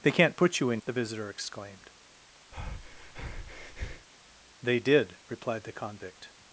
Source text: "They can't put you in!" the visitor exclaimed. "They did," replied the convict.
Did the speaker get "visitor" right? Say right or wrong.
right